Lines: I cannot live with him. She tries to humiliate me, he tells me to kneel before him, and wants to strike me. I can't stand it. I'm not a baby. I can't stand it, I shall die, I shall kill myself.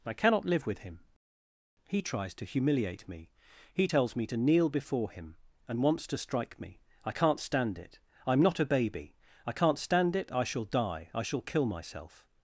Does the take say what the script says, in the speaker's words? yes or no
no